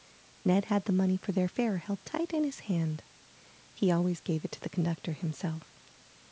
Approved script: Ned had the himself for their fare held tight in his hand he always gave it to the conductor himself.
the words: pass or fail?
fail